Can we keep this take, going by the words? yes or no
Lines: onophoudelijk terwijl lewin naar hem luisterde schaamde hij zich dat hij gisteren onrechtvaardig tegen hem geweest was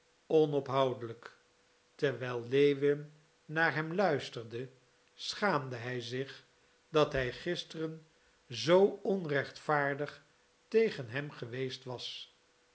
no